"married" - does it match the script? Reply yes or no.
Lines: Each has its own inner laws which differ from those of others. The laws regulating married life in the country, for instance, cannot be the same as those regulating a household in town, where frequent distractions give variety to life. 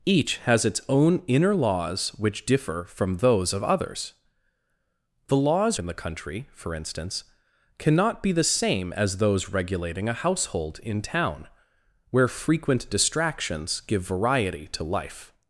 no